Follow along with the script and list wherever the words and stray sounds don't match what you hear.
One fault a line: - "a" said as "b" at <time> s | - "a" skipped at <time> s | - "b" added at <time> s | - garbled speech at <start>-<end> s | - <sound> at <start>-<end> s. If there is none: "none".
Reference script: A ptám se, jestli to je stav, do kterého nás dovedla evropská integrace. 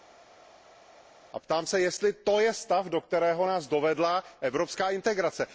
none